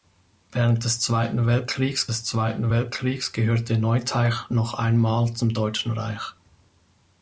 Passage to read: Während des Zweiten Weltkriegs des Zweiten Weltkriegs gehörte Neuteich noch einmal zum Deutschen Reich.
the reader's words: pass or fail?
pass